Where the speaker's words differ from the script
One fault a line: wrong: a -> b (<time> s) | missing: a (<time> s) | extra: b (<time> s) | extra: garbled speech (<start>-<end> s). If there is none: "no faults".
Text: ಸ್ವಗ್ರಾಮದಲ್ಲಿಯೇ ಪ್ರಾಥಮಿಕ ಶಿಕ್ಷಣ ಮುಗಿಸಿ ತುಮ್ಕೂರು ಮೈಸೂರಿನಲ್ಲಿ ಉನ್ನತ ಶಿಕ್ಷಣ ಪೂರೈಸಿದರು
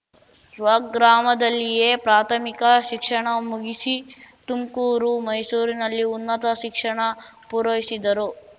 no faults